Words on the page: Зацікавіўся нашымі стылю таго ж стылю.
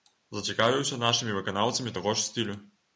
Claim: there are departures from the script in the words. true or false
true